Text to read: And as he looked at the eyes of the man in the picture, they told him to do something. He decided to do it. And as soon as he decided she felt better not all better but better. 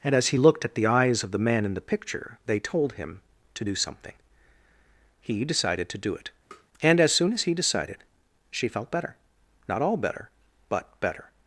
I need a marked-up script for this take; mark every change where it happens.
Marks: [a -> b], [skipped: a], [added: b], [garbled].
And as he looked at the eyes of the man in the picture, they told him to do something. He decided to do it. And as soon as he decided she felt better not all better but better.